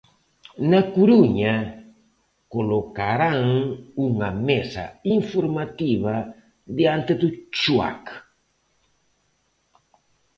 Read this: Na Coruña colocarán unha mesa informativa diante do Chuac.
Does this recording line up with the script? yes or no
yes